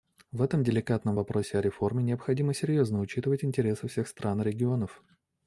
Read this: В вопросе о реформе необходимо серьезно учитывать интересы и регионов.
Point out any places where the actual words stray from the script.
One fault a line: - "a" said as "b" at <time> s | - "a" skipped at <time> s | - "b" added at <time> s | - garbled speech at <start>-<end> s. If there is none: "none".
- "этом деликатном" added at 0.4 s
- "всех стран" added at 3.9 s